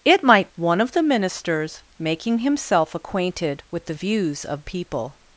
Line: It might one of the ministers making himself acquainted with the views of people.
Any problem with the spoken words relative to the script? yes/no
no